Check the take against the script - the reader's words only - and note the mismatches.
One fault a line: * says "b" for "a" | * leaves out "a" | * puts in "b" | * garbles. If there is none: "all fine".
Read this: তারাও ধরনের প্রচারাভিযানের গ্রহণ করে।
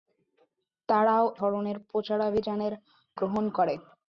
all fine